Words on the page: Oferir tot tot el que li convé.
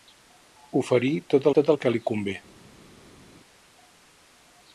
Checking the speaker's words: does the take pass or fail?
pass